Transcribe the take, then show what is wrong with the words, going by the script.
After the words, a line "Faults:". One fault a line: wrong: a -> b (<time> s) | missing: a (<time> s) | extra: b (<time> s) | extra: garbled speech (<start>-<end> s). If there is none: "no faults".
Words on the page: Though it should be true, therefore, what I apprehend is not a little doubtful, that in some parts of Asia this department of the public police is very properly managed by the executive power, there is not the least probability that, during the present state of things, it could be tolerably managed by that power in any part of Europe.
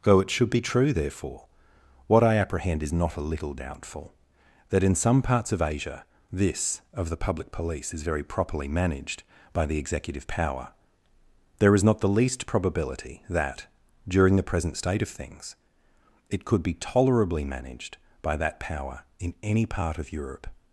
Though it should be true, therefore, what I apprehend is not a little doubtful, that in some parts of Asia this of the public police is very properly managed by the executive power, there is not the least probability that, during the present state of things, it could be tolerably managed by that power in any part of Europe.
Faults:
missing: department (6.8 s)